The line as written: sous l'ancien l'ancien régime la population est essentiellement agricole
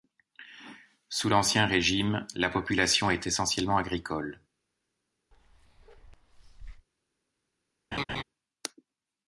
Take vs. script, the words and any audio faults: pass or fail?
fail